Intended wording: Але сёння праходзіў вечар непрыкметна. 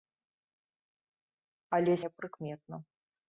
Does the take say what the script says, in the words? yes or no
no